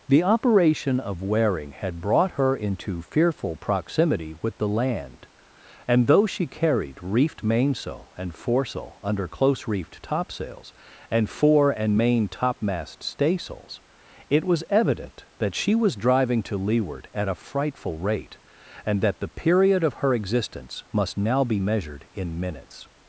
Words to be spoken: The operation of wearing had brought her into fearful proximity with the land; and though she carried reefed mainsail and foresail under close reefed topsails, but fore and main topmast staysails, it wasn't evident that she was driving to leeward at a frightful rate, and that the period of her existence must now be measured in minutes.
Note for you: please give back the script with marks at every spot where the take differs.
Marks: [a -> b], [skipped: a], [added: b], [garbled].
The operation of wearing had brought her into fearful proximity with the land; and though she carried reefed mainsail and foresail under close reefed topsails, [but -> and] fore and main topmast staysails, it [wasn't -> was] evident that she was driving to leeward at a frightful rate, and that the period of her existence must now be measured in minutes.